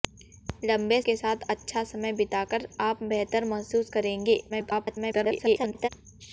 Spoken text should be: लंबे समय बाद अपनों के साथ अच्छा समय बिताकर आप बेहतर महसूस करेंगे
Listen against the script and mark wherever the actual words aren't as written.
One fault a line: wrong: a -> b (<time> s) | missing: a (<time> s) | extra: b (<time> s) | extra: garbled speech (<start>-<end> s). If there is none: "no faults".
missing: समय बाद अपनों (1.0 s)
extra: garbled speech (4.5-5.9 s)